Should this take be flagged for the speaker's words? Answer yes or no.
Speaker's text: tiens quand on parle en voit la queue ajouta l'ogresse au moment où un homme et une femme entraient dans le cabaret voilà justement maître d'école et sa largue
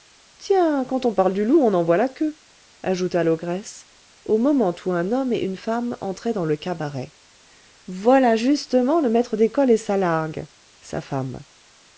yes